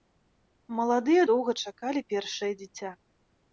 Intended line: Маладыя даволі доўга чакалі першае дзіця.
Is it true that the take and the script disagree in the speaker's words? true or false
true